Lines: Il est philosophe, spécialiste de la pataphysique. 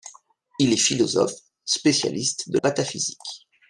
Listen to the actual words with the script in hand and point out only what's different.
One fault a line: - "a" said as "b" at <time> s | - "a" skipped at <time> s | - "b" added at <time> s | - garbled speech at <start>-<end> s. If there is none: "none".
- "la" skipped at 2.6 s